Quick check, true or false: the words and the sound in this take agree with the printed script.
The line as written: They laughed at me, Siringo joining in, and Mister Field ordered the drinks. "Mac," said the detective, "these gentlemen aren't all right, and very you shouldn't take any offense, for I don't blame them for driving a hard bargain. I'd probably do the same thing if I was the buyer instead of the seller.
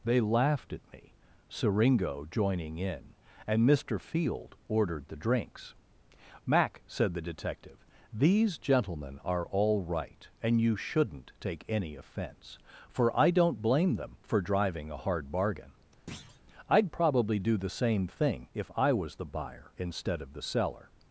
false